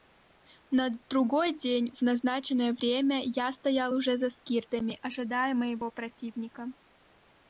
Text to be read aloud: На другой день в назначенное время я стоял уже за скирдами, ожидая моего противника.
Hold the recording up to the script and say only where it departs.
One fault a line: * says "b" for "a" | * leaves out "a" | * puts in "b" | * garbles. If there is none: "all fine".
all fine